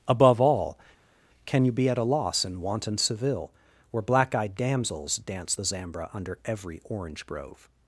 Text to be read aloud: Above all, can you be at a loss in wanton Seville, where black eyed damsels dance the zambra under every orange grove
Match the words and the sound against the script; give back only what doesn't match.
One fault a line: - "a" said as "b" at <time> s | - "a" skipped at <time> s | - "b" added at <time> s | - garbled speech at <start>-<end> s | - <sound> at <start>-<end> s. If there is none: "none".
none